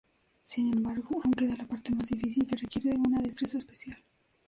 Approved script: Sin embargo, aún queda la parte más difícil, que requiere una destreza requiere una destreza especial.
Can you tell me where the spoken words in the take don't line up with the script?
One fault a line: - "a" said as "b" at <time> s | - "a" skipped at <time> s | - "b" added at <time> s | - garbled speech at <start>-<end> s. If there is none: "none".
- "requiere una destreza" skipped at 3.6 s